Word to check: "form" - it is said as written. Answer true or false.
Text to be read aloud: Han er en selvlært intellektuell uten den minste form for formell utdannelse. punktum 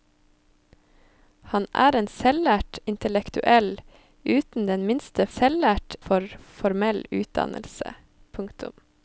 false